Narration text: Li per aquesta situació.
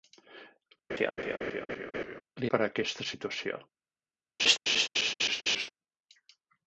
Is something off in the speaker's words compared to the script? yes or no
no